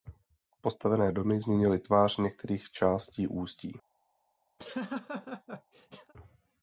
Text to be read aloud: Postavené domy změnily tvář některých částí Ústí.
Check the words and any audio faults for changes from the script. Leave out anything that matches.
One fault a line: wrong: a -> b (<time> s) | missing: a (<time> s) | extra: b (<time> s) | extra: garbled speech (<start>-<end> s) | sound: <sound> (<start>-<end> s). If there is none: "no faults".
sound: laugh (4.6-6.1 s)